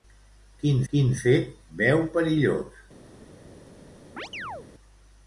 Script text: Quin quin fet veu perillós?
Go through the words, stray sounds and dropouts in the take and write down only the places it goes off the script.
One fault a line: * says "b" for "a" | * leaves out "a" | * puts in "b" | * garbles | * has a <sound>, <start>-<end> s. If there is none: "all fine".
* has a chirp, 4.2-4.7 s